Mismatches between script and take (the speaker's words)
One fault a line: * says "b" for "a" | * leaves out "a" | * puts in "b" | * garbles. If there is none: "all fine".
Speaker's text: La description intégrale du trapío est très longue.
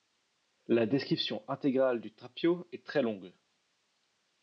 all fine